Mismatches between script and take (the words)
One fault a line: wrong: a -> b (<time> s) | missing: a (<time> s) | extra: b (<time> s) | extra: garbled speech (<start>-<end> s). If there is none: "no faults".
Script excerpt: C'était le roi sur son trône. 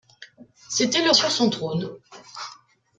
missing: roi (1.1 s)